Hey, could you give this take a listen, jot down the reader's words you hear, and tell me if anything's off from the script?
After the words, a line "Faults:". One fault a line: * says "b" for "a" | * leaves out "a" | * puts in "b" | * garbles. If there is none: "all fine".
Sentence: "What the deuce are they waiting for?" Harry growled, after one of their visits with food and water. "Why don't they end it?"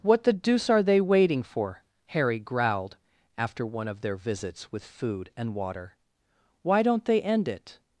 "What the deuce are they waiting for?" Harry growled, after one of their visits with food and water. "Why don't they end it?"
Faults:
all fine